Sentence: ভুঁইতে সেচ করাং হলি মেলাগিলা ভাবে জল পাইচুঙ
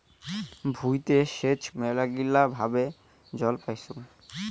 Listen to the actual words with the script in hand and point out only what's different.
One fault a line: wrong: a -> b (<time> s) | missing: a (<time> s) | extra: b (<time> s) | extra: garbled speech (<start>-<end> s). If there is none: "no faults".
missing: করাং হলি (1.6 s)